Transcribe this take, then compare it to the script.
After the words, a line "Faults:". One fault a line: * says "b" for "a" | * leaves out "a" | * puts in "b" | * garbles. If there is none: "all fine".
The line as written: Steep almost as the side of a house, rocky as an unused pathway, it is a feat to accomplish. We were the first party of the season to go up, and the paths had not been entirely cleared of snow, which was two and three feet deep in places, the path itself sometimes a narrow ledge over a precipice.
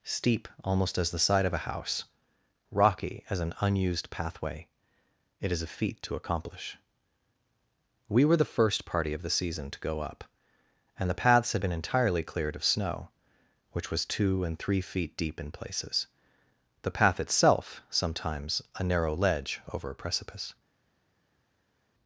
Steep almost as the side of a house, rocky as an unused pathway, it is a feat to accomplish. We were the first party of the season to go up, and the paths had been entirely cleared of snow, which was two and three feet deep in places, the path itself sometimes a narrow ledge over a precipice.
Faults:
* leaves out "not"